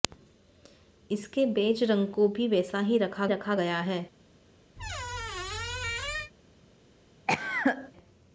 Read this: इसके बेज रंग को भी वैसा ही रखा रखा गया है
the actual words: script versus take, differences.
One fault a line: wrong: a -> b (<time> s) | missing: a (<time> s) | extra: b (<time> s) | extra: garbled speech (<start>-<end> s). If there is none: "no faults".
no faults